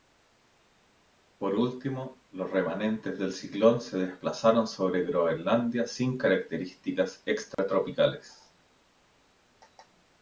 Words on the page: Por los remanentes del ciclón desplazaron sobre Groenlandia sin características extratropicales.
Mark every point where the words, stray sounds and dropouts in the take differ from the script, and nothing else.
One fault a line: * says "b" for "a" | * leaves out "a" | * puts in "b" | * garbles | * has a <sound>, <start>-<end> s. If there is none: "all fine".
* puts in "último"
* puts in "se"
* has a dropout, 7.5-7.6 s